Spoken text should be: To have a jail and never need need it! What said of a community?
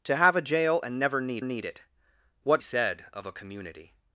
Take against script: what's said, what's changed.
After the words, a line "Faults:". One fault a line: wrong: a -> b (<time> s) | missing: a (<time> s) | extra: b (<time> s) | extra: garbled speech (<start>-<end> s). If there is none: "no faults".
To have a jail and never need need it! What said of a community?
Faults:
no faults